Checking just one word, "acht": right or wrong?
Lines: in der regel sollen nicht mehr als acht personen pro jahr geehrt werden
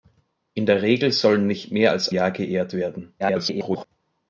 wrong